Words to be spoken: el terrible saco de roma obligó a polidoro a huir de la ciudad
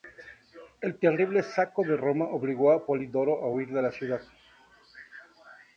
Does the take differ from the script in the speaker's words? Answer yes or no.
no